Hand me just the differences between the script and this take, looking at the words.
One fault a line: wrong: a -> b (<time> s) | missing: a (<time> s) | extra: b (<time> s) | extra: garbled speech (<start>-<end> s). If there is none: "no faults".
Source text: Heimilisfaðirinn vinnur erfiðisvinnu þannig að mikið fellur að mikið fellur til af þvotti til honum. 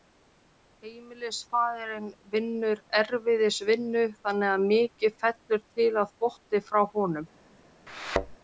missing: að mikið fellur (5.7 s)
wrong: til -> frá (6.7 s)